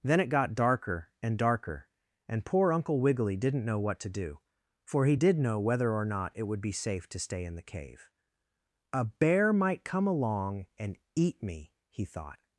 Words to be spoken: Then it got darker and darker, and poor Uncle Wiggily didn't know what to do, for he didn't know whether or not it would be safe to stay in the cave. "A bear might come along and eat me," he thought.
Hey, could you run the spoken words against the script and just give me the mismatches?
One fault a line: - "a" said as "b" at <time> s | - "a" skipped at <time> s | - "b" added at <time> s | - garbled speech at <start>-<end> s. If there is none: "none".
- "didn't" said as "did" at 5.1 s